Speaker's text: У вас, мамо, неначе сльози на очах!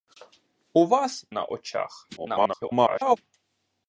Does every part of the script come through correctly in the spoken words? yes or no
no